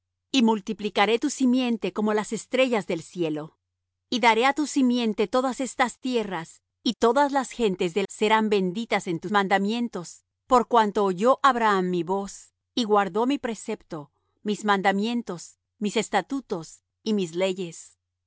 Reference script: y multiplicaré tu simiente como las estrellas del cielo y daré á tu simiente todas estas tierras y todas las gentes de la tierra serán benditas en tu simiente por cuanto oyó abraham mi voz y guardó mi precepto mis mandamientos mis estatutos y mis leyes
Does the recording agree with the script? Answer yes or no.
no